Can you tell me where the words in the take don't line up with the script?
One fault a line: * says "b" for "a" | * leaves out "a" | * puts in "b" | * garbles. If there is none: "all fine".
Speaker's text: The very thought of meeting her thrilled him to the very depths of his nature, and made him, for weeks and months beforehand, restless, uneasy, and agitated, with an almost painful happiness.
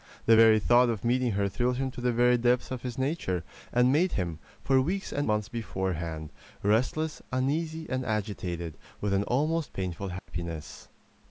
all fine